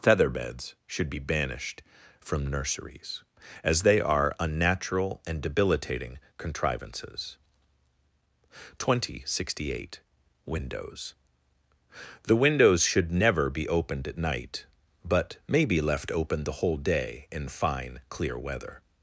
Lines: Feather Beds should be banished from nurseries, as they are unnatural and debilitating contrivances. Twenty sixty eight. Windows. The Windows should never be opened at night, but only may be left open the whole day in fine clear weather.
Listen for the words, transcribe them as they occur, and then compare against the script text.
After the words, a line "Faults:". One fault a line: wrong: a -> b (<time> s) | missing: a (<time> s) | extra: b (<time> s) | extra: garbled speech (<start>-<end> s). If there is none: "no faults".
Feather Beds should be banished from nurseries, as they are unnatural and debilitating contrivances. Twenty sixty eight. Windows. The Windows should never be opened at night, but may be left open the whole day in fine clear weather.
Faults:
missing: only (15.4 s)